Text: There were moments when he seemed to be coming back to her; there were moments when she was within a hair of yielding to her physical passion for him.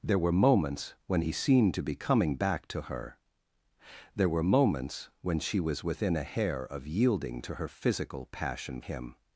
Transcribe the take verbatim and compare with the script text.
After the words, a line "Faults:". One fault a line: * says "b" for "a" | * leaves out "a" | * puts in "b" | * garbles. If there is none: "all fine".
There were moments when he seemed to be coming back to her; there were moments when she was within a hair of yielding to her physical passion him.
Faults:
* leaves out "for"